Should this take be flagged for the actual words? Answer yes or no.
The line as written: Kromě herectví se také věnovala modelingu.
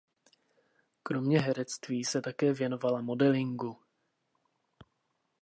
no